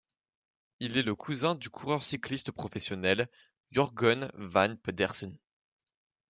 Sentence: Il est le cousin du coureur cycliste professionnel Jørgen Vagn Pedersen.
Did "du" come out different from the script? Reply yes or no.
no